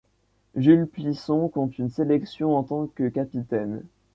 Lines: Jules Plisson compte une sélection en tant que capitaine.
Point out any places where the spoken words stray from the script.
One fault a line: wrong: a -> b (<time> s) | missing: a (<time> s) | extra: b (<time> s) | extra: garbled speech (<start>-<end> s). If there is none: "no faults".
no faults